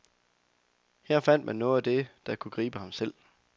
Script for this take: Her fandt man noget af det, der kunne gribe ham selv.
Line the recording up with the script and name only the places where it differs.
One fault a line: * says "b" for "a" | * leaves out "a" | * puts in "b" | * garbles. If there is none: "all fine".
all fine